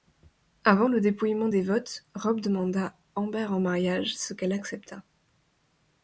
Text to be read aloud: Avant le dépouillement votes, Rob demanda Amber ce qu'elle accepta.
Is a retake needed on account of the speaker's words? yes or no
yes